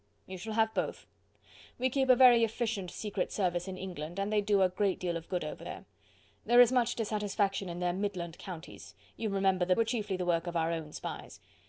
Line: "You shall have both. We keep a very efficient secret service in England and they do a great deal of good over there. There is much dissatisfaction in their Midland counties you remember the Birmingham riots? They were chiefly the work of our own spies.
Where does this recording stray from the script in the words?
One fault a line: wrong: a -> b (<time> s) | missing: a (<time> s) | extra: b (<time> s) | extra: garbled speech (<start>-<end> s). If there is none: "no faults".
missing: Birmingham riots They (9.7 s)